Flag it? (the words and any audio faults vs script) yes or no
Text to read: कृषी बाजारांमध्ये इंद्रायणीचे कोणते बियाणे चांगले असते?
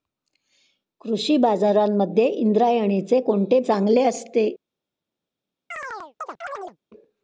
yes